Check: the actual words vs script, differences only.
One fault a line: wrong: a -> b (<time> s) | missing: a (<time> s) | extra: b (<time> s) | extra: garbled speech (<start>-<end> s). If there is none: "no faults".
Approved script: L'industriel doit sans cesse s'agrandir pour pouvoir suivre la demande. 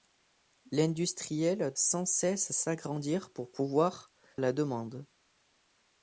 missing: doit (1.7 s)
missing: suivre (4.1 s)